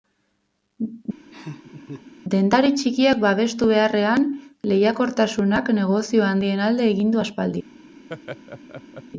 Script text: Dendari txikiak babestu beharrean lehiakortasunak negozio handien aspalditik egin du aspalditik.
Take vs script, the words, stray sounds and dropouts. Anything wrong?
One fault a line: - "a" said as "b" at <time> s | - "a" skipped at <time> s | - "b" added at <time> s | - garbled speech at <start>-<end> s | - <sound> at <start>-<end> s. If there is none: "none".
- laugh at 1.3-2.1 s
- "aspalditik" said as "alde" at 6.7 s
- laugh at 8.1-9.0 s